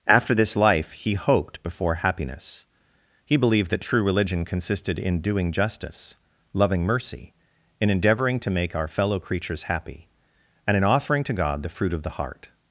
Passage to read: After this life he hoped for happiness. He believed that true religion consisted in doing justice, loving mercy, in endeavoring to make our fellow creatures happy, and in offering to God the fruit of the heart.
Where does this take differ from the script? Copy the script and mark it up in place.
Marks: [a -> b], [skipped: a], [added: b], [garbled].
After this life he hoped [for -> before] happiness. He believed that true religion consisted in doing justice, loving mercy, in endeavoring to make our fellow creatures happy, and in offering to God the fruit of the heart.